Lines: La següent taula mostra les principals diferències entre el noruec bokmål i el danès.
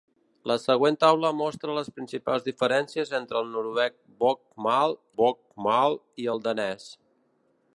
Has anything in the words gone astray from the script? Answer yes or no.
yes